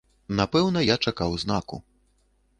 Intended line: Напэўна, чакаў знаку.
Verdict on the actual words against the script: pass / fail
fail